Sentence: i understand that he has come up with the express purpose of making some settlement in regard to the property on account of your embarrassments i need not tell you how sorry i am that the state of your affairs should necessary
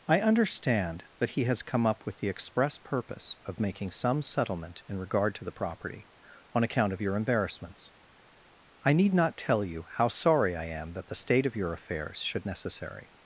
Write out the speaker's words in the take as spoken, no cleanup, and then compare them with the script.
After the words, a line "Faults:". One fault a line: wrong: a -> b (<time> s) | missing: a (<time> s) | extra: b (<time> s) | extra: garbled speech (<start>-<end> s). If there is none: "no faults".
i understand that he has come up with the express purpose of making some settlement in regard to the property on account of your embarrassments i need not tell you how sorry i am that the state of your affairs should necessary
Faults:
no faults